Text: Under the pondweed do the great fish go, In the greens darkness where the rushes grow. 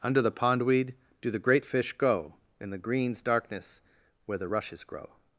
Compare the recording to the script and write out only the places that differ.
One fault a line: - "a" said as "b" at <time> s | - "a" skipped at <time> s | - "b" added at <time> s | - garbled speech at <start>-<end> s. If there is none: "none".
none